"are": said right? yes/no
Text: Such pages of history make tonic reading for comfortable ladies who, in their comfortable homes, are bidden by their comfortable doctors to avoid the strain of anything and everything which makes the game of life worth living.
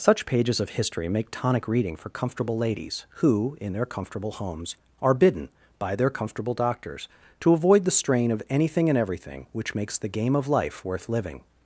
yes